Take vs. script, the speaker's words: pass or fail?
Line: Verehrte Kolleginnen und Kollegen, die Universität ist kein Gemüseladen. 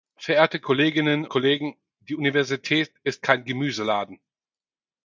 fail